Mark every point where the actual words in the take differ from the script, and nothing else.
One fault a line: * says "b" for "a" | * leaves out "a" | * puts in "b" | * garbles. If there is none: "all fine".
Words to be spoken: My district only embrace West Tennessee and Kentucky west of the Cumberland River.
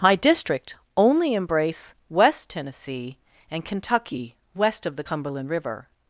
all fine